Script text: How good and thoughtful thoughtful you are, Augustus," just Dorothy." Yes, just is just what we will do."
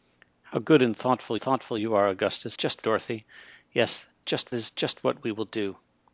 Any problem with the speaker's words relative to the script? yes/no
no